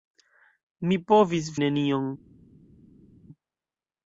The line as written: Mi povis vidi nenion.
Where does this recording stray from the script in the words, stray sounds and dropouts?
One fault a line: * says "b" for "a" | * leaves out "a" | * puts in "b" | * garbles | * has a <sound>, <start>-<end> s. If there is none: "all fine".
* leaves out "vidi"